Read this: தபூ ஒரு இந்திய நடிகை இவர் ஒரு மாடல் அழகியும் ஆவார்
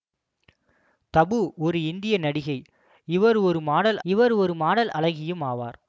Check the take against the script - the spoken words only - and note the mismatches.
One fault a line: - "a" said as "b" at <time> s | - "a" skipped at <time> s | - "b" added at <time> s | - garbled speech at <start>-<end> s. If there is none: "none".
- "இவர் ஒரு மாடல்" added at 4.0 s